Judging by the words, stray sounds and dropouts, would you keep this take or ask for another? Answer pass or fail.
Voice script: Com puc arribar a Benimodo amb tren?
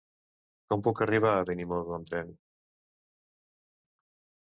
pass